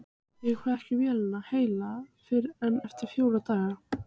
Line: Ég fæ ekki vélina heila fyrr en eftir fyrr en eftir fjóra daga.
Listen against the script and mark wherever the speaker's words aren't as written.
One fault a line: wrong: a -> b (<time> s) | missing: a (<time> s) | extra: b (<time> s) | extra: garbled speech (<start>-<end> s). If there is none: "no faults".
missing: fyrr en eftir (3.1 s)